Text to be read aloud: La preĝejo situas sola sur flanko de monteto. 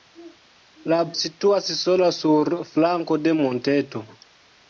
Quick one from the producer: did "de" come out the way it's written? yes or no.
yes